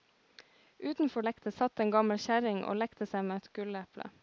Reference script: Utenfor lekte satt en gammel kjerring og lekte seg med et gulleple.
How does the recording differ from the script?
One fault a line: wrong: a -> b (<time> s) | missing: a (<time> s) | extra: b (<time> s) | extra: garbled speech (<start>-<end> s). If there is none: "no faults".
no faults